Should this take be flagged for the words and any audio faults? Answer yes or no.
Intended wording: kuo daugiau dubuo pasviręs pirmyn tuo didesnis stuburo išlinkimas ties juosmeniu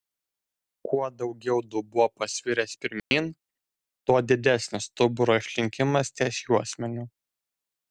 yes